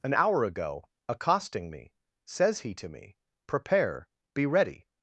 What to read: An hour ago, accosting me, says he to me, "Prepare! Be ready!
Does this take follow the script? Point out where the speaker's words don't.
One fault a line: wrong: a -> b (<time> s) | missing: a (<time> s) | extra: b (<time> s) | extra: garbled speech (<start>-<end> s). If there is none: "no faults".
no faults